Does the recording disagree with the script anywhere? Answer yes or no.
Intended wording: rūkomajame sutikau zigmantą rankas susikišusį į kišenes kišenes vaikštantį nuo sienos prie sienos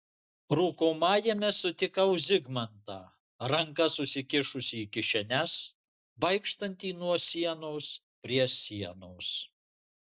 yes